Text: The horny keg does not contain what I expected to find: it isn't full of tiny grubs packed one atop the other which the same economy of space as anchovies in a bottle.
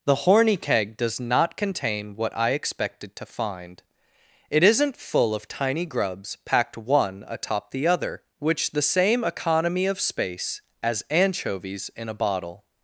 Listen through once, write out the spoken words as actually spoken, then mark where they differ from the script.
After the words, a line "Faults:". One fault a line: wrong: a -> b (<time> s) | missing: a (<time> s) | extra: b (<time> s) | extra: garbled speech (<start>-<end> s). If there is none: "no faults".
The horny keg does not contain what I expected to find: it isn't full of tiny grubs packed one atop the other which the same economy of space as anchovies in a bottle.
Faults:
no faults